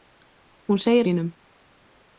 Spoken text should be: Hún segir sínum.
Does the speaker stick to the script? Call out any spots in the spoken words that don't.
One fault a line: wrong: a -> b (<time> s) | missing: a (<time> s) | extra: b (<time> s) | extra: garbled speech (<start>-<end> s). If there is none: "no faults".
no faults